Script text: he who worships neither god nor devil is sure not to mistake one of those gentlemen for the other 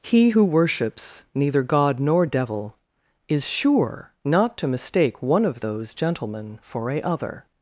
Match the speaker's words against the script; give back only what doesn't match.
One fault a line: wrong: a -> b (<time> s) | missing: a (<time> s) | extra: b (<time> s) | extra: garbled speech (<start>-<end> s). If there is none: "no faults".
wrong: the -> a (6.9 s)